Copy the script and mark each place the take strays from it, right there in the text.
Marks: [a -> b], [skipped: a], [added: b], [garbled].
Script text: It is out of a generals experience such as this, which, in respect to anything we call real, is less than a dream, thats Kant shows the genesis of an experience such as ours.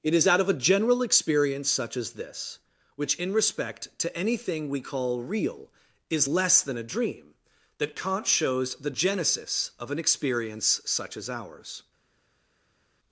It is out of a [generals -> general] experience such as this, which, in respect to anything we call real, is less than a dream, [thats -> that] Kant shows the genesis of an experience such as ours.